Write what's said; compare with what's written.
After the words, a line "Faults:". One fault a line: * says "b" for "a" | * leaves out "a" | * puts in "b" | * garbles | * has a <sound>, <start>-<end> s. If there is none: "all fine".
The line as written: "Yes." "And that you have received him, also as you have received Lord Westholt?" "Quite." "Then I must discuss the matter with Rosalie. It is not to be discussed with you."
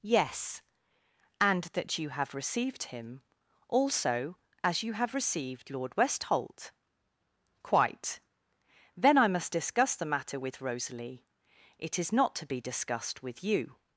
"Yes." "And that you have received him, also as you have received Lord Westholt?" "Quite." "Then I must discuss the matter with Rosalie. It is not to be discussed with you."
Faults:
all fine